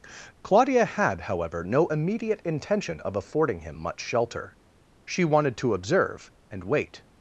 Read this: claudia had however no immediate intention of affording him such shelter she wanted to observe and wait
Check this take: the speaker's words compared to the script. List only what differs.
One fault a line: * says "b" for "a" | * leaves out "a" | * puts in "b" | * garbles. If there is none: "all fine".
* says "much" for "such"